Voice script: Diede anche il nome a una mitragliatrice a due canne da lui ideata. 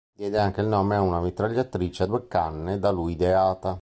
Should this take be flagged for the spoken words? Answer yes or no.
no